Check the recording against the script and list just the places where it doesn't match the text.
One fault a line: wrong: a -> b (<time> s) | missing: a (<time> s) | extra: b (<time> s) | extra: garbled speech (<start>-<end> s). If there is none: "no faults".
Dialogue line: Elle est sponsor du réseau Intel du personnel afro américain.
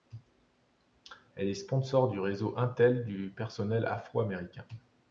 no faults